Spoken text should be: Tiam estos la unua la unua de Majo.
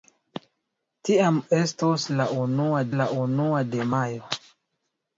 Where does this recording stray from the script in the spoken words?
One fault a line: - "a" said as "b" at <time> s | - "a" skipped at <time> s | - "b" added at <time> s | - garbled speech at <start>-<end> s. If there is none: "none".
none